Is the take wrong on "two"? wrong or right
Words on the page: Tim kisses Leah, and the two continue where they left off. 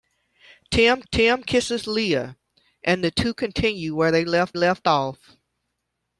right